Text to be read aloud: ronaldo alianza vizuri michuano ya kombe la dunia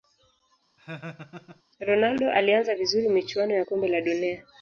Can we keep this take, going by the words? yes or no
yes